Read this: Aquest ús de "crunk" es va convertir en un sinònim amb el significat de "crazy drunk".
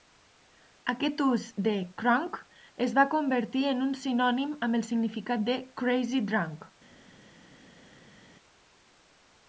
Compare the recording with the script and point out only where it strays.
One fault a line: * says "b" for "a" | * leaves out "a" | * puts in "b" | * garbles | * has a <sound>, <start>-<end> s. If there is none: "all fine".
all fine